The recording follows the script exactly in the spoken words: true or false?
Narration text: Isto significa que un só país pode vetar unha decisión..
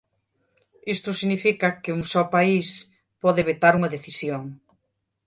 true